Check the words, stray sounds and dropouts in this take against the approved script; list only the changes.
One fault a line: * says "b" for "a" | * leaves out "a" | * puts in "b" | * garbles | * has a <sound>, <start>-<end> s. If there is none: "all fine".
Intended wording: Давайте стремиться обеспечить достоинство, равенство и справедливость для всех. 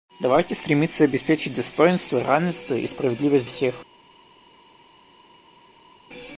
* leaves out "для"